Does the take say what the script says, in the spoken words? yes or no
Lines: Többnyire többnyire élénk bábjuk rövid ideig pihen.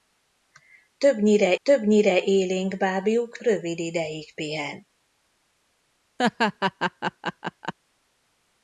yes